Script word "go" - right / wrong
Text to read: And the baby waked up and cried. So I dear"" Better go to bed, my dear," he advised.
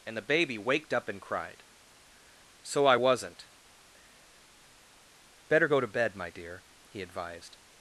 right